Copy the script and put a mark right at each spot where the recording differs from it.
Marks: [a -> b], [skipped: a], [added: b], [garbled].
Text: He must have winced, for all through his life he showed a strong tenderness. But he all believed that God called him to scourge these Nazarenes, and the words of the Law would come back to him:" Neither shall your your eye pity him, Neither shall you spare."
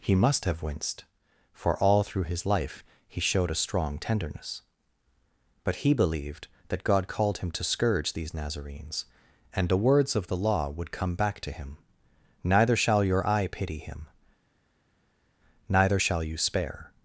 He must have winced, for all through his life he showed a strong tenderness. But he [skipped: all] believed that God called him to scourge these Nazarenes, and the words of the Law would come back to him:" Neither shall your [skipped: your] eye pity him, Neither shall you spare."